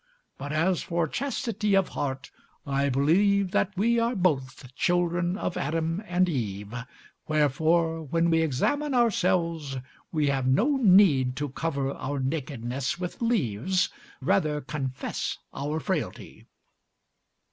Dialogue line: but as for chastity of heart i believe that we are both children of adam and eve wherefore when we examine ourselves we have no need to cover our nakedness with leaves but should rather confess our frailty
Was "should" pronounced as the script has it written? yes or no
no